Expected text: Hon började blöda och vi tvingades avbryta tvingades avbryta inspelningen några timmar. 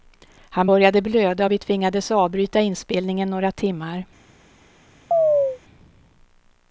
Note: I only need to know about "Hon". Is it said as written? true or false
false